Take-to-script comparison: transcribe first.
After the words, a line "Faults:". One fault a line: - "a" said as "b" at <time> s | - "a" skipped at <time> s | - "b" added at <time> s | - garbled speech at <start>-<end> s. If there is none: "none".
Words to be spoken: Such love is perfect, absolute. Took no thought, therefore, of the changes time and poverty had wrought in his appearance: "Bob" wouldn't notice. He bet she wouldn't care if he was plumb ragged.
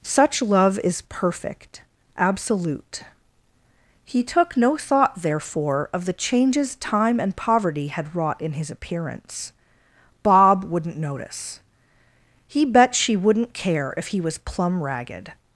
Such love is perfect, absolute. He took no thought, therefore, of the changes time and poverty had wrought in his appearance: "Bob" wouldn't notice. He bet she wouldn't care if he was plumb ragged.
Faults:
- "He" added at 4.0 s